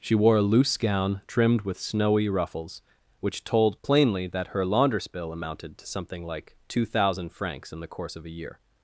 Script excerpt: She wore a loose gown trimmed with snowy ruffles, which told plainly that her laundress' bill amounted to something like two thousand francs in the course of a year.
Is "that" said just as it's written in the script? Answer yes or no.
yes